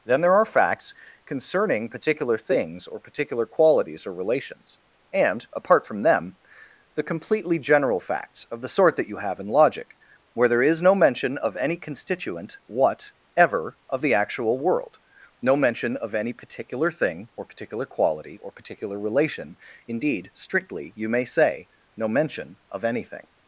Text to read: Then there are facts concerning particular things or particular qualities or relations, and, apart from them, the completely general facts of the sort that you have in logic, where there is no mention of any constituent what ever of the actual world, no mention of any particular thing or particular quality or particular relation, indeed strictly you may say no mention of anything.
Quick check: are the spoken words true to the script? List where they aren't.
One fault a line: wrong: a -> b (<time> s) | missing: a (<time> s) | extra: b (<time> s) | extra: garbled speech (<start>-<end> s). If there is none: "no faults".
no faults